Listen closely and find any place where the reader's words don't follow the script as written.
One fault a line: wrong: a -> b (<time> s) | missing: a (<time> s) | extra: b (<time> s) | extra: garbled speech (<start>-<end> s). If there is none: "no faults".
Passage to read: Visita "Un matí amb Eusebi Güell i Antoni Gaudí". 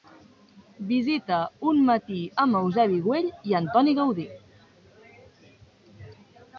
no faults